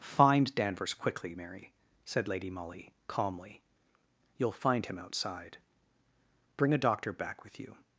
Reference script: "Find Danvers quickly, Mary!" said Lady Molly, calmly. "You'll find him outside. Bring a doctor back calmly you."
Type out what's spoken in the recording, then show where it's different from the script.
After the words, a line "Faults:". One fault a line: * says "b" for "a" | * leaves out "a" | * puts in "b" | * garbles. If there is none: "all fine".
"Find Danvers quickly, Mary!" said Lady Molly, calmly. "You'll find him outside. Bring a doctor back with you."
Faults:
* says "with" for "calmly"